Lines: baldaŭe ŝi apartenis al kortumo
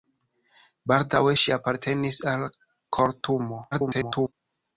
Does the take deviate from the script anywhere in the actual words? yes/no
yes